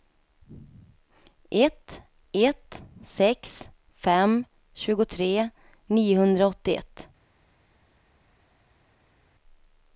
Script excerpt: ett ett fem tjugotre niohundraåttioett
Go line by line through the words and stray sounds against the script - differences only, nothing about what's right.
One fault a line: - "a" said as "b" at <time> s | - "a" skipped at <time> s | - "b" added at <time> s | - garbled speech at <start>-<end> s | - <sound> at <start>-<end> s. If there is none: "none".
- "sex" added at 3.0 s